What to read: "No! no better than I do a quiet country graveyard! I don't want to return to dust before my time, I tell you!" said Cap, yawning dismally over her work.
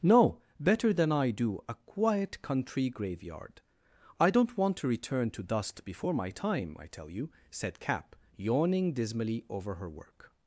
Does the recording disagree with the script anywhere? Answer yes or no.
yes